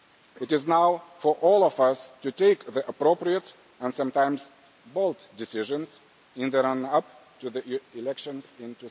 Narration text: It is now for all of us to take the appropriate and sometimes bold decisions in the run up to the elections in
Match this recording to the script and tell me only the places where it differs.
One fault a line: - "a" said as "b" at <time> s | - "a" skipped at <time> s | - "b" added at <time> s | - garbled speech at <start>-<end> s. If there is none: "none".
none